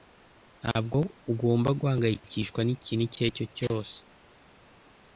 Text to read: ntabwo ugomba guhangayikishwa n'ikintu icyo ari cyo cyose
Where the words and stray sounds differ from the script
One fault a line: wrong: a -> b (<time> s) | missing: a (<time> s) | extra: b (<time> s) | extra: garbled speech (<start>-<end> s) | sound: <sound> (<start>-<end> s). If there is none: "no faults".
no faults